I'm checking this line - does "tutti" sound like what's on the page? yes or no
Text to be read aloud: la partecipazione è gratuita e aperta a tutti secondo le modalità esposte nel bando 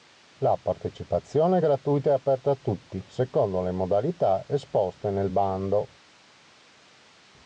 yes